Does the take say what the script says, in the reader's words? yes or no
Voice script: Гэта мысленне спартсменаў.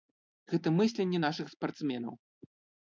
no